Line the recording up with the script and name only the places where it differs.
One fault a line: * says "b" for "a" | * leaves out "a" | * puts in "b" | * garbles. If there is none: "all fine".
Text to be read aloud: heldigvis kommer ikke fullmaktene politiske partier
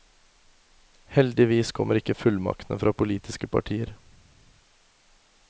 * puts in "fra"